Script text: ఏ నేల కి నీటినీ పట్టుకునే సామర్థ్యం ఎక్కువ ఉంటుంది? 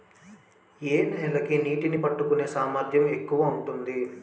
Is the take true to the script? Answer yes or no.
yes